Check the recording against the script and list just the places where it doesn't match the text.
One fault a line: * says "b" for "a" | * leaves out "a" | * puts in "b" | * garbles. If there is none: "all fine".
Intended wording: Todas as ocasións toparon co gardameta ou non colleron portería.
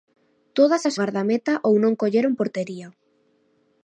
* leaves out "ocasións toparon co"